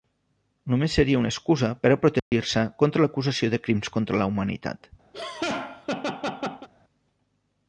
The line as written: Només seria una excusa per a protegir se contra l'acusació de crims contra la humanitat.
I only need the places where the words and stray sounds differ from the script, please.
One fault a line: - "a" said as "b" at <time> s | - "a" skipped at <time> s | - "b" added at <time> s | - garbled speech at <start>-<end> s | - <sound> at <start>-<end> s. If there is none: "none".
- dropout at 2.2-2.3 s
- laugh at 5.1-6.7 s